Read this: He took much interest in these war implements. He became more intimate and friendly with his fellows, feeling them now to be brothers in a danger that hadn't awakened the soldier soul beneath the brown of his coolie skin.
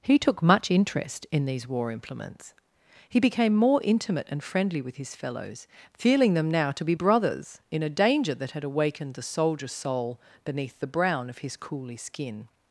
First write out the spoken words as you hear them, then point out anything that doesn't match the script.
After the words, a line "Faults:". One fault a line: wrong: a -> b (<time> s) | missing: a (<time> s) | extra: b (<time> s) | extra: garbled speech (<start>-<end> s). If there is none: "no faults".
He took much interest in these war implements. He became more intimate and friendly with his fellows, feeling them now to be brothers in a danger that had awakened the soldier soul beneath the brown of his coolie skin.
Faults:
wrong: hadn't -> had (8.5 s)